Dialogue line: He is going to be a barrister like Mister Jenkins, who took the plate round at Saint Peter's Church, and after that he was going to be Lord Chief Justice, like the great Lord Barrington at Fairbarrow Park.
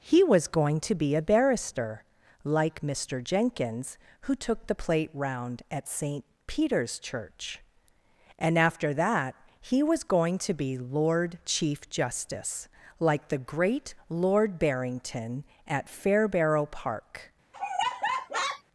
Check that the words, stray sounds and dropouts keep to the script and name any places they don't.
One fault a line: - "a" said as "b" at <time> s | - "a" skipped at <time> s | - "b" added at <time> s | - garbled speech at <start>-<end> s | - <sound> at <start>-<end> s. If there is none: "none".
- "is" said as "was" at 0.2 s
- laugh at 17.5-18.6 s